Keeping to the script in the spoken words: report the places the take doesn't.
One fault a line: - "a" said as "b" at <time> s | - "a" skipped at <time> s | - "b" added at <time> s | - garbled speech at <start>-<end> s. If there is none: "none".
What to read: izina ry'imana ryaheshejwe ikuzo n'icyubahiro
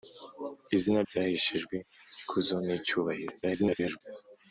- "ry'imana" skipped at 1.0 s
- garbled speech at 3.4-4.0 s